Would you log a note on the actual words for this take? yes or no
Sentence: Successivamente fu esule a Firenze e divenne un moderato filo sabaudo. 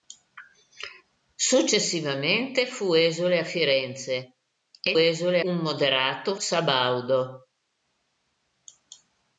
yes